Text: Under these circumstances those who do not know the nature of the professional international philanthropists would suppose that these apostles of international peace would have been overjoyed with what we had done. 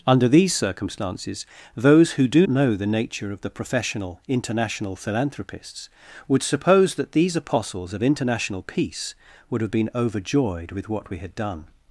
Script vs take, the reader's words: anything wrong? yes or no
yes